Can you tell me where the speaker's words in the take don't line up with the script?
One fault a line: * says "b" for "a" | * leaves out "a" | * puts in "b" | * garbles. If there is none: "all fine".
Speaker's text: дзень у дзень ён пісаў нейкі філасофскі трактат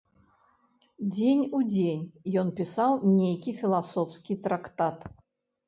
all fine